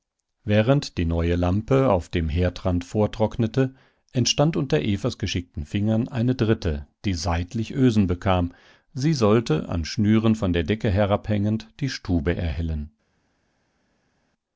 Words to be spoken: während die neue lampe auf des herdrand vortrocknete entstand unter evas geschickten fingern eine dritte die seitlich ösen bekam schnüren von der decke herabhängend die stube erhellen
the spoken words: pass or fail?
fail